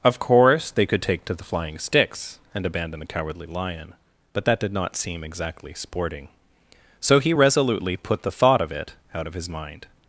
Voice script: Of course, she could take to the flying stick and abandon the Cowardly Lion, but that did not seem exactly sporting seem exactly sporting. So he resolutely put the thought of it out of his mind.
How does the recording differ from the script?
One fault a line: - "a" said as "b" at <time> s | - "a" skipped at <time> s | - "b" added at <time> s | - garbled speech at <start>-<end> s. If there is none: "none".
- "she" said as "they" at 0.7 s
- "stick" said as "sticks" at 1.8 s
- "seem exactly sporting" skipped at 6.3 s